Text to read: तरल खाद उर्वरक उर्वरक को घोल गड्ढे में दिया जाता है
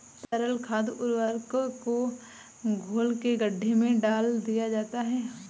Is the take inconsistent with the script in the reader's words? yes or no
yes